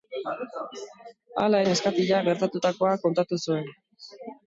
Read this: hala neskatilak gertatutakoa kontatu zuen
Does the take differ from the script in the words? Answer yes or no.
no